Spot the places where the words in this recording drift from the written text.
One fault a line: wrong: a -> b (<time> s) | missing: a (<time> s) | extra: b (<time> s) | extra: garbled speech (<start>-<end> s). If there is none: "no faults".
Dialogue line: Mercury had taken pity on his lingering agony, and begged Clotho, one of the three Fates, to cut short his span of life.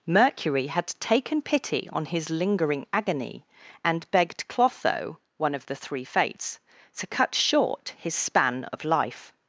no faults